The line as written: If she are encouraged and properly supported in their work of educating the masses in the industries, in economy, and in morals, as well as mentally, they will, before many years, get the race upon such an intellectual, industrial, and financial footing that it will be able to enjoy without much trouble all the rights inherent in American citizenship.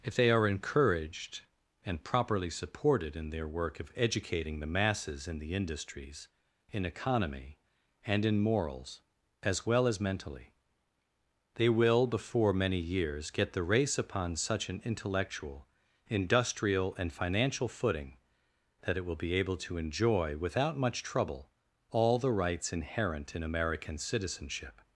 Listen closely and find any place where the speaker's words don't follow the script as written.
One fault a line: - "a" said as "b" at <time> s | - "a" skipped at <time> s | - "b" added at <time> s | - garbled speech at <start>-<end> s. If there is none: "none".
- "she" said as "they" at 0.1 s